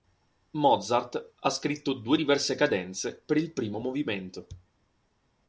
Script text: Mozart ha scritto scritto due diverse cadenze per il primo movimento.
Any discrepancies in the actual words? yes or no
yes